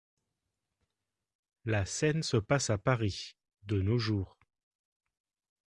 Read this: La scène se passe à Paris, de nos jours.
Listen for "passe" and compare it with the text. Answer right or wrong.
right